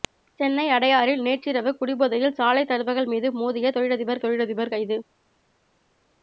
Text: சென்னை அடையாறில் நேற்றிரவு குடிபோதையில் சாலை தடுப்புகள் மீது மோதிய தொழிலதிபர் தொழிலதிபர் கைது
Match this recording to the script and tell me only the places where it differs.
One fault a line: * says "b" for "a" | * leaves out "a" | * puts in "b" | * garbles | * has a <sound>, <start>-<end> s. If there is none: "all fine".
all fine